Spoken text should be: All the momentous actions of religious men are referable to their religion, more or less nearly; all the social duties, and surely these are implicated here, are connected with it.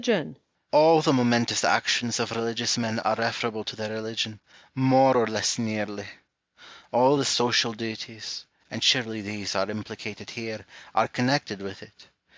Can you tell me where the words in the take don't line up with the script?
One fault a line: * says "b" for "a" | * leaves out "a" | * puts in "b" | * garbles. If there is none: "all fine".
all fine